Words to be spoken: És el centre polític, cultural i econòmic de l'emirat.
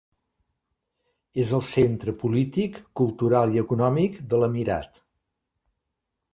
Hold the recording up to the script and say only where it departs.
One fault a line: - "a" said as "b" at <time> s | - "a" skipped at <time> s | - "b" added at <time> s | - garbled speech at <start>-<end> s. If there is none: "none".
none